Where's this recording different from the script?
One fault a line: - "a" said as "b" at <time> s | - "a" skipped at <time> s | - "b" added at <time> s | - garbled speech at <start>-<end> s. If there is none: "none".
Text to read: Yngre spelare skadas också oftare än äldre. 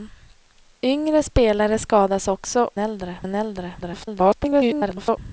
- "oftare" said as "äldre" at 2.8 s
- garbled speech at 3.8-5.2 s